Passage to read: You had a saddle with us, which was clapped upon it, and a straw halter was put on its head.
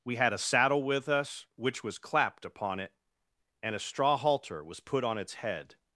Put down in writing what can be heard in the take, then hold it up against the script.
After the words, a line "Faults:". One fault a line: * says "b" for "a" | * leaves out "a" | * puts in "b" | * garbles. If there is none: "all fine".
We had a saddle with us, which was clapped upon it, and a straw halter was put on its head.
Faults:
* says "We" for "You"